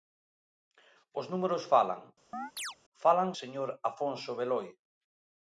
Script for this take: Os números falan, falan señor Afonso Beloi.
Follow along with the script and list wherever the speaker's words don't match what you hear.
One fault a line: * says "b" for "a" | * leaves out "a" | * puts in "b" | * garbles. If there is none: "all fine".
all fine